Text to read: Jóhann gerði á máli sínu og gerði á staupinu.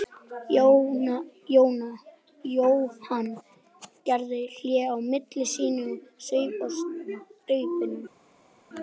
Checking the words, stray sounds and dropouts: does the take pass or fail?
fail